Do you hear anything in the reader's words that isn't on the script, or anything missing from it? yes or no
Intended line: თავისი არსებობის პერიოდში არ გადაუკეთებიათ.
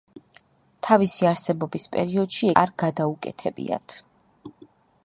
no